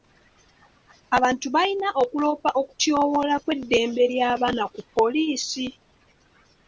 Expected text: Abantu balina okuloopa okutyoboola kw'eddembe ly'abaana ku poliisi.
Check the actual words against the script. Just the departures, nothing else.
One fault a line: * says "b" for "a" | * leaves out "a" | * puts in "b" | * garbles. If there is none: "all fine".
all fine